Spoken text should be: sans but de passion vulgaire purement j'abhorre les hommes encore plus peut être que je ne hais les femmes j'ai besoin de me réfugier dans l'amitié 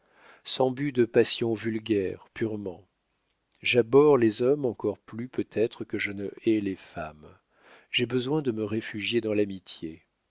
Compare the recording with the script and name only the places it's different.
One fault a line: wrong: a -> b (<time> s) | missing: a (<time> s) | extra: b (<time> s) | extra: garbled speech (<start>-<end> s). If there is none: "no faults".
no faults